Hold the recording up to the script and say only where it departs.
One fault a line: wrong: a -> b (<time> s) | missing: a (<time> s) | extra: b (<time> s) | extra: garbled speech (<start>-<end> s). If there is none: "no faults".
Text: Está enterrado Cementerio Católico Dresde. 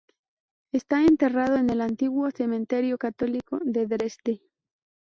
extra: en el Antiguo (1.6 s)
extra: de (3.6 s)